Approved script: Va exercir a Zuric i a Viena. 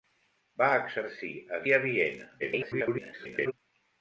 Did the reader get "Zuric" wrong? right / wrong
wrong